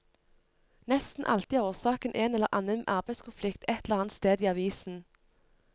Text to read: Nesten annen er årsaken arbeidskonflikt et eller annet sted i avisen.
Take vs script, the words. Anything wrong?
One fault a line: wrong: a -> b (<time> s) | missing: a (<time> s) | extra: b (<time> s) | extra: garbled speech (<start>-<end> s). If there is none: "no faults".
wrong: annen -> alltid (1.2 s)
extra: en eller annen (2.1 s)